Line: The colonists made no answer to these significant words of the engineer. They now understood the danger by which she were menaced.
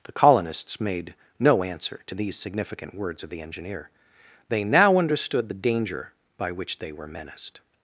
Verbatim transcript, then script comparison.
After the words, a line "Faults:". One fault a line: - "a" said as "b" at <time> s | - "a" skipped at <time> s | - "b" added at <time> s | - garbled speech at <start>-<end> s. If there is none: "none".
The colonists made no answer to these significant words of the engineer. They now understood the danger by which they were menaced.
Faults:
- "she" said as "they" at 6.8 s